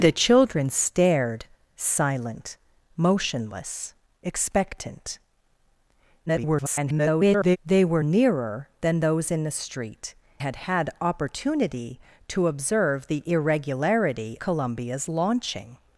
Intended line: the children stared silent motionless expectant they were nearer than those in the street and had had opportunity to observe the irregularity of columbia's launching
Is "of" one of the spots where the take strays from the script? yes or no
yes